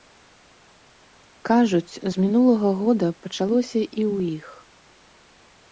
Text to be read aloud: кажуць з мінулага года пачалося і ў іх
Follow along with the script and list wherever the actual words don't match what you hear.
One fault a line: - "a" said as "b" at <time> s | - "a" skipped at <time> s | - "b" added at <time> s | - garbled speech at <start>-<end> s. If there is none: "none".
none